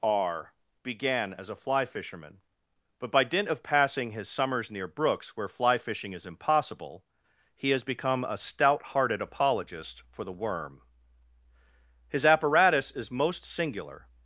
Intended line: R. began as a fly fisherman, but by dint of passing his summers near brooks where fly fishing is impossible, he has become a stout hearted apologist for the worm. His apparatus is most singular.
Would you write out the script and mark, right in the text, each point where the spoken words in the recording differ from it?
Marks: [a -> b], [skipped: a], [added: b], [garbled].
R. began as a fly fisherman, but by dint of passing his summers near brooks where fly fishing is impossible, he has become a stout hearted apologist for the worm. His apparatus is most singular.